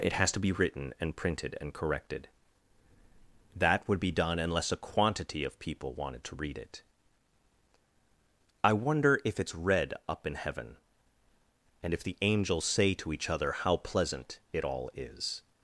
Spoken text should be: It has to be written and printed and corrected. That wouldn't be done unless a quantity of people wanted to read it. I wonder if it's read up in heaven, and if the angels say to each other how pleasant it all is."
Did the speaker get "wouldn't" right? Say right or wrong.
wrong